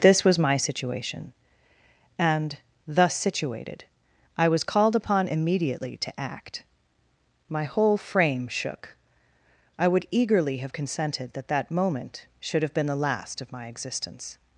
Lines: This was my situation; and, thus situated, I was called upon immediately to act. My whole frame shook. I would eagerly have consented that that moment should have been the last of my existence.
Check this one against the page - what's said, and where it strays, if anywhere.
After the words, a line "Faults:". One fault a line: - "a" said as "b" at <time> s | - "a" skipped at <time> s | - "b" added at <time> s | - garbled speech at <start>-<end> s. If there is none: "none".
This was my situation; and, thus situated, I was called upon immediately to act. My whole frame shook. I would eagerly have consented that that moment should have been the last of my existence.
Faults:
none